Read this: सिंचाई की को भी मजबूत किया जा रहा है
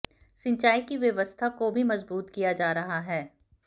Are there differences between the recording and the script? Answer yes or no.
yes